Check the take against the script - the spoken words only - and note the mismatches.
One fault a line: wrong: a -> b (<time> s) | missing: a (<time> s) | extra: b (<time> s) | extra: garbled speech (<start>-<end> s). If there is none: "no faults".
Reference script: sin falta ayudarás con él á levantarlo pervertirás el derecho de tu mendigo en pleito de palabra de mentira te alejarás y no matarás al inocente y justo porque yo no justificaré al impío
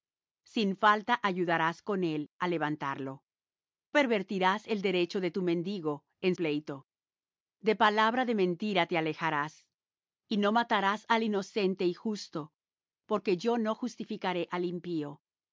no faults